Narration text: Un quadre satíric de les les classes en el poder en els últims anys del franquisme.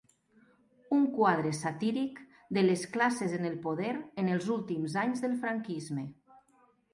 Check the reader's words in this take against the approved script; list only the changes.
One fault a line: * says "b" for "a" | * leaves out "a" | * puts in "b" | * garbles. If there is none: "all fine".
* leaves out "les"